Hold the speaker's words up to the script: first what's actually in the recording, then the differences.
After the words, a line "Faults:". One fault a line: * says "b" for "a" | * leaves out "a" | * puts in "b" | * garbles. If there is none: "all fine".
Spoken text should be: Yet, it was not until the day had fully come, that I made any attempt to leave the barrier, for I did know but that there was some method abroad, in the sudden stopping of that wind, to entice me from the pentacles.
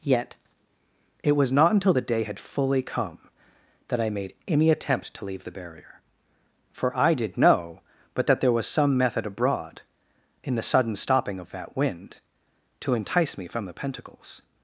Yet, it was not until the day had fully come, that I made any attempt to leave the barrier, for I did know but that there was some method abroad, in the sudden stopping of that wind, to entice me from the pentacles.
Faults:
all fine